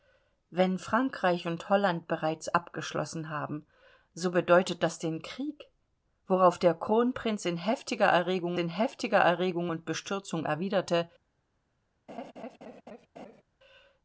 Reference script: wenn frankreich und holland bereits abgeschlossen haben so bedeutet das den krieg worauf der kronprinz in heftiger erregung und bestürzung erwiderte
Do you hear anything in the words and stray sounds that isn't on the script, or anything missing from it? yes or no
yes